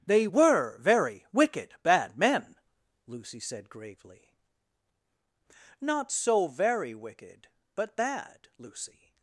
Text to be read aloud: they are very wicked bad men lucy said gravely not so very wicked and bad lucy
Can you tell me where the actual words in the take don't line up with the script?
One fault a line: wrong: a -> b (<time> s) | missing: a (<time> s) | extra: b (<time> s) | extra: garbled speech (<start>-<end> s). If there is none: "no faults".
wrong: are -> were (0.2 s)
wrong: and -> but (7.7 s)